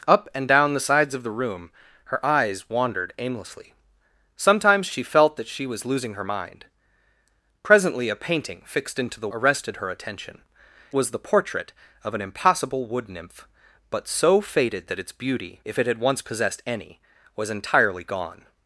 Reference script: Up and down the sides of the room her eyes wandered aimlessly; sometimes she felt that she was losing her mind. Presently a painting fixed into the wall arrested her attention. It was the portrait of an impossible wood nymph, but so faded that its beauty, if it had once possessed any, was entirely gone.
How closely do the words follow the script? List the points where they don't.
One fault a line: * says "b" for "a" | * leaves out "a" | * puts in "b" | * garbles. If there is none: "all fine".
* leaves out "wall"
* leaves out "It"